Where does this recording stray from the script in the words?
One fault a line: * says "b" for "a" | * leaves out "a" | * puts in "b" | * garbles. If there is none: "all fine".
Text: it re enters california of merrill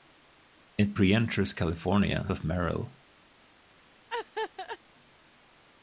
all fine